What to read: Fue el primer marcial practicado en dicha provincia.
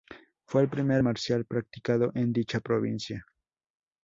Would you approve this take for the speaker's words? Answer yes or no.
yes